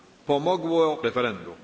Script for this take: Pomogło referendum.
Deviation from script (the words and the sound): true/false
false